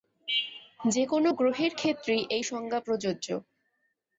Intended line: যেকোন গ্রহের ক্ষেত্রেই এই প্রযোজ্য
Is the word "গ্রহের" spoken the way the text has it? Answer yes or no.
yes